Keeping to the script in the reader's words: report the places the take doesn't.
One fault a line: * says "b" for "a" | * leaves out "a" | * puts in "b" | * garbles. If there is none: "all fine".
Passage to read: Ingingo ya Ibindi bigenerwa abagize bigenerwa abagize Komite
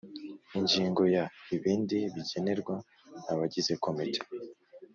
* leaves out "bigenerwa abagize"